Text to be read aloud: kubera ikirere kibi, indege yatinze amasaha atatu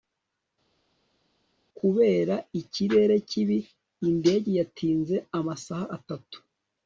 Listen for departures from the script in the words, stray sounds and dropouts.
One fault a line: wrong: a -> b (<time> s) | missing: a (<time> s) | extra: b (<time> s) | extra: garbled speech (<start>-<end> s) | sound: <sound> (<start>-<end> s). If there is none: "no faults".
no faults